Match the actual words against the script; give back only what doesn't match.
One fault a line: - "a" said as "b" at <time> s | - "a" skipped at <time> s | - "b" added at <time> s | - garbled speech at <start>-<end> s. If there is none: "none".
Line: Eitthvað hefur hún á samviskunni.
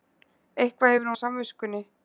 - "hún" skipped at 1.1 s